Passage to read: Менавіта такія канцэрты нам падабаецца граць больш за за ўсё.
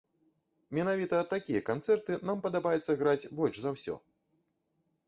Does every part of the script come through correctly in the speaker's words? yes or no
no